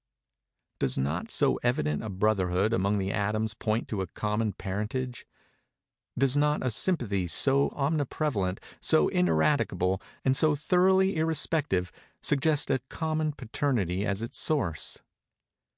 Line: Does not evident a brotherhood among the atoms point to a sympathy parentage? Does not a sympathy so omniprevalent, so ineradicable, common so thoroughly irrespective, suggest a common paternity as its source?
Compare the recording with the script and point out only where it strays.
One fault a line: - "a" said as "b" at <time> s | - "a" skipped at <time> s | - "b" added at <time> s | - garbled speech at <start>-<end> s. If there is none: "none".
- "so" added at 1.3 s
- "sympathy" said as "common" at 4.1 s
- "common" said as "and" at 10.2 s